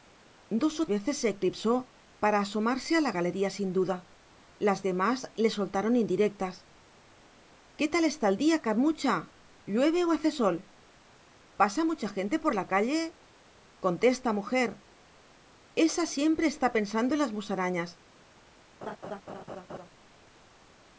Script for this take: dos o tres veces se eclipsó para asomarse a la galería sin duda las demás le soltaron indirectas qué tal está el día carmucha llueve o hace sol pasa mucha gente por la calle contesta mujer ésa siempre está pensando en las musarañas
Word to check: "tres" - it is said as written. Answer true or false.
false